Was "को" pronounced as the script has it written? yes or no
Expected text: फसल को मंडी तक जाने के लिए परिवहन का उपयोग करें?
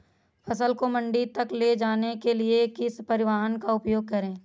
yes